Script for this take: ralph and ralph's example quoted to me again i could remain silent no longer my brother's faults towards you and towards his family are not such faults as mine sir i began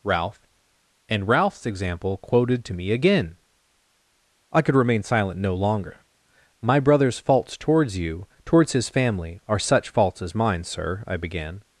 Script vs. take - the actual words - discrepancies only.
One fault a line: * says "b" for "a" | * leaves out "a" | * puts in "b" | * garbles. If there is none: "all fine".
* leaves out "and"
* leaves out "not"